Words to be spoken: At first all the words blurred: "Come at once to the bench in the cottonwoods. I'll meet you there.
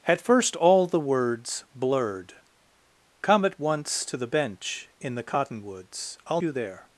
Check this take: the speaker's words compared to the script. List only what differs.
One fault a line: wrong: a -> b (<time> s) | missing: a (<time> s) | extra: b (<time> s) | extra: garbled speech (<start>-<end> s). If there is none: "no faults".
missing: meet (6.4 s)